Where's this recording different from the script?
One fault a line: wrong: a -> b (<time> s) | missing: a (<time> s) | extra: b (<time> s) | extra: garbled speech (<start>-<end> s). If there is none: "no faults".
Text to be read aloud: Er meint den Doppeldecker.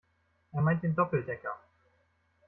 no faults